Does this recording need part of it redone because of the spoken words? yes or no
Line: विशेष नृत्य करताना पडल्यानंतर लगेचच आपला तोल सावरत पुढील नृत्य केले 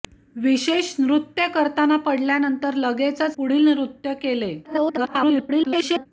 yes